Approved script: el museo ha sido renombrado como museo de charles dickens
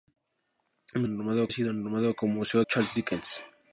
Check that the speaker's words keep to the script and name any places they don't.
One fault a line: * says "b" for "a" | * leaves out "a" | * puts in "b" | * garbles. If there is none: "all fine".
* says "renombrado" for "museo"
* leaves out "de"